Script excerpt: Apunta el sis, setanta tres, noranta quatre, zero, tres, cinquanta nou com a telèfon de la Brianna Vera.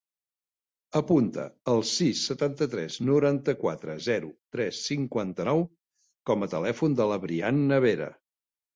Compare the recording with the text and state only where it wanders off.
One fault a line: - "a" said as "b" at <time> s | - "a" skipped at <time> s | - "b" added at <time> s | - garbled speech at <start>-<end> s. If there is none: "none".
none